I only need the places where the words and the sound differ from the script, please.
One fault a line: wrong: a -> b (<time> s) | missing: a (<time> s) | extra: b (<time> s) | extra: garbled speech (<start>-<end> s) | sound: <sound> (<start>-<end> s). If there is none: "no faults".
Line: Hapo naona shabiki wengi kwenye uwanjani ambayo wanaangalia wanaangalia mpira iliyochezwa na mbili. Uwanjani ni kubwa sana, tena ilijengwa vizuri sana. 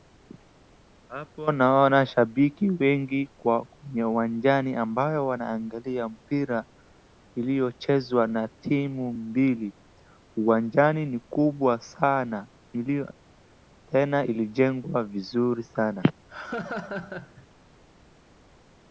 missing: wanaangalia (6.1 s)
extra: timu (8.5 s)
sound: laugh (16.3-17.5 s)